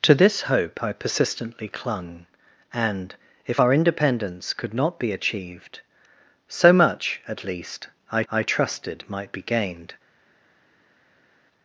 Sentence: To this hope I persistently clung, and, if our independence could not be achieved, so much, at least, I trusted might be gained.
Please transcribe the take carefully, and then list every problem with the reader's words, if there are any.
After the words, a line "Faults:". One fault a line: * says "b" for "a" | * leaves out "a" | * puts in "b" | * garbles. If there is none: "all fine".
To this hope I persistently clung, and, if our independence could not be achieved, so much, at least, I I trusted might be gained.
Faults:
* puts in "I"